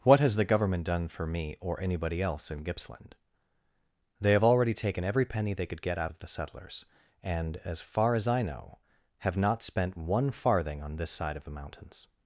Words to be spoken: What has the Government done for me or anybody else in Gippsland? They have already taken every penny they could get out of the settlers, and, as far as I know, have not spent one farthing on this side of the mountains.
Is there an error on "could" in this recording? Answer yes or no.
no